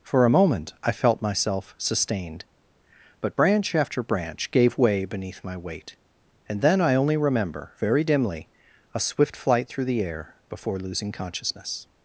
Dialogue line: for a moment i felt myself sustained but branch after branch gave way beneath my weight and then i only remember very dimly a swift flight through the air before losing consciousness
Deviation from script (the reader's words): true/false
false